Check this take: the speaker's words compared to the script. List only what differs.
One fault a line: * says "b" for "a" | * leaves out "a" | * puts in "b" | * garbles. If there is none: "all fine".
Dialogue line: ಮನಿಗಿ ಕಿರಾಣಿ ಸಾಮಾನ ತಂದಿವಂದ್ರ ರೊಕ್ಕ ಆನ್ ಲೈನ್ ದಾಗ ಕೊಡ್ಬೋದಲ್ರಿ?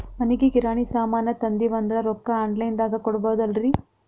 all fine